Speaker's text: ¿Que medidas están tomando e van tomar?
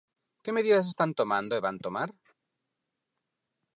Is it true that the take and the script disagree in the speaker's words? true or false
false